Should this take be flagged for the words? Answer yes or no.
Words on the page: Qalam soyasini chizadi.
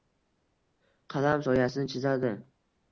no